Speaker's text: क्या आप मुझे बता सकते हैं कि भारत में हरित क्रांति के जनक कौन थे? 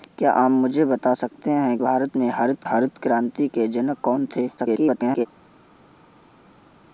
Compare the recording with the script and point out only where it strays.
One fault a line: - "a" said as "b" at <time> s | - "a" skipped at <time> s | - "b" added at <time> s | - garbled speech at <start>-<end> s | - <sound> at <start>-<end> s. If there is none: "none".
- "कि" skipped at 1.8 s
- "हरित" added at 2.6 s
- garbled speech at 4.6-5.3 s